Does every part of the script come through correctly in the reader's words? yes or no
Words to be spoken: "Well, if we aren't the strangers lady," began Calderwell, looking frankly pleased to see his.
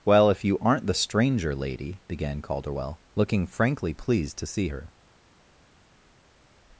no